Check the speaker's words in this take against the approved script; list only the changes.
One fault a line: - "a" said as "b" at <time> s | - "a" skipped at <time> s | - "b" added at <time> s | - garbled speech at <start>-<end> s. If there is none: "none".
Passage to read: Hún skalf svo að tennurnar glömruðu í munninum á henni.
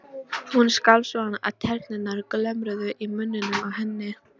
none